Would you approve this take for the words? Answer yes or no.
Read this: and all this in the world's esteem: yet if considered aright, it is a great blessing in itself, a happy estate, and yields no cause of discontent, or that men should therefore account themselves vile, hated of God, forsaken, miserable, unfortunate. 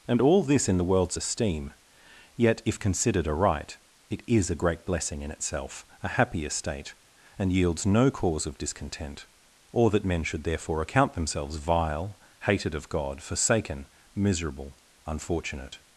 yes